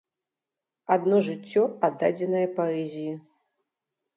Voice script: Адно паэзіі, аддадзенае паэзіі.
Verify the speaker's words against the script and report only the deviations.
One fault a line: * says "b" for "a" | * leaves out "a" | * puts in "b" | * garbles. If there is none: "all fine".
* says "жыццё" for "паэзіі"